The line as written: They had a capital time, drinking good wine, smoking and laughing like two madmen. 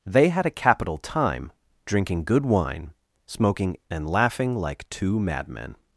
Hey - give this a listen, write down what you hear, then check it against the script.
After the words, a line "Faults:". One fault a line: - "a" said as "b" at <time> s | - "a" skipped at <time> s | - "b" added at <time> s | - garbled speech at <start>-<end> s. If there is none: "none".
They had a capital time, drinking good wine, smoking and laughing like two madmen.
Faults:
none